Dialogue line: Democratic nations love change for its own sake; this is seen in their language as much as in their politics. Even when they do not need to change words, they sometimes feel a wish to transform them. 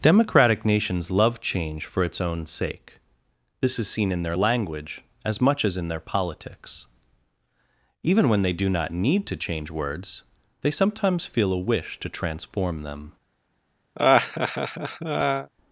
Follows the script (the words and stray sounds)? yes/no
no